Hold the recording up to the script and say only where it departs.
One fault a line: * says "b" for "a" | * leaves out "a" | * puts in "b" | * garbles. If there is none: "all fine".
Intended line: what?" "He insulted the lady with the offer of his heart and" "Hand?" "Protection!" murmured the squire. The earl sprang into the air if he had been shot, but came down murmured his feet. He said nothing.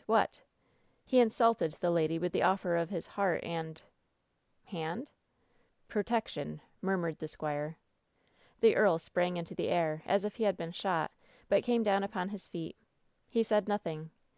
* puts in "as"
* says "upon" for "murmured"